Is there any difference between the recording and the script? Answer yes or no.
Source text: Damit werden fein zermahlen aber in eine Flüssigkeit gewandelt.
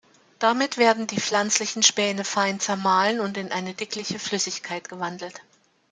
yes